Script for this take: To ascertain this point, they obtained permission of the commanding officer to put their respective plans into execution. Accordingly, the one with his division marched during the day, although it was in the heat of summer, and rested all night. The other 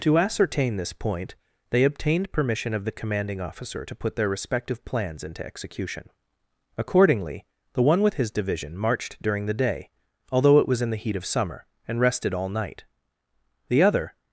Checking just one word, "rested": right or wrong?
right